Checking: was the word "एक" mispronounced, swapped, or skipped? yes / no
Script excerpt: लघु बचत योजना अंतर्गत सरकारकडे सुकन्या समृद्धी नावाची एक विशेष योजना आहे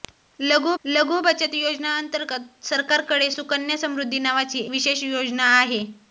yes